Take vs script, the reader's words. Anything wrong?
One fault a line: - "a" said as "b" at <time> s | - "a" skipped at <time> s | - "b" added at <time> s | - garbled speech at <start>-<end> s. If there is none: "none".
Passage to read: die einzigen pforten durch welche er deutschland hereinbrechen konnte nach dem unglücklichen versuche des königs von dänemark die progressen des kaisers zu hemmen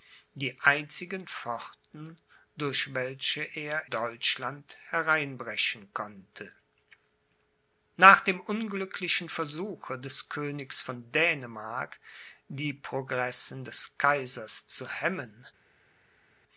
none